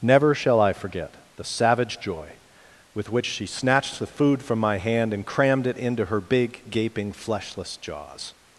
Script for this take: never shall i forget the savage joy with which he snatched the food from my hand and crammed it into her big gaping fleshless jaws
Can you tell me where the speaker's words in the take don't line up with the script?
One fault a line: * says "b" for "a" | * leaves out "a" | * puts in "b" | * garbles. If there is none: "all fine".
* says "she" for "he"